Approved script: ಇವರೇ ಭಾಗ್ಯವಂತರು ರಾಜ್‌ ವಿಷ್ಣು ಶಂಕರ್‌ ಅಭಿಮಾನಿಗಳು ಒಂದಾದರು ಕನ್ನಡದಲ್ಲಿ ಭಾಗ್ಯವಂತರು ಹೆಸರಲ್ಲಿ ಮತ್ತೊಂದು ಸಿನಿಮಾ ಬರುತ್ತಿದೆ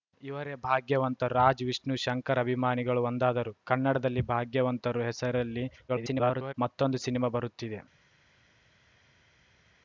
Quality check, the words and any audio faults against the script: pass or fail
fail